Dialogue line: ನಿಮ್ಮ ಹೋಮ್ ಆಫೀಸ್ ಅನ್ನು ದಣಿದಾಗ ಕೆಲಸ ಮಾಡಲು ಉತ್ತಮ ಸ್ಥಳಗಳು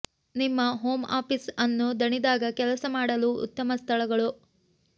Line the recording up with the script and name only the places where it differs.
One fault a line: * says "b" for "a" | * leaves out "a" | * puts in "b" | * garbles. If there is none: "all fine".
all fine